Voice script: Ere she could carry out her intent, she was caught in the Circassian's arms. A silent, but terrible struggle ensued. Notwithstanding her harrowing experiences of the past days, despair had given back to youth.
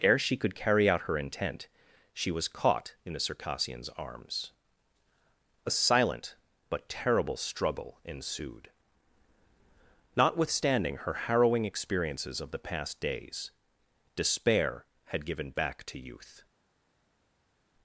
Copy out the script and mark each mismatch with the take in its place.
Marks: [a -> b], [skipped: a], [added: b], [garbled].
Ere she could carry out her intent, she was caught in the Circassian's arms. A silent, but terrible struggle ensued. Notwithstanding her harrowing experiences of the past days, despair had given back to youth.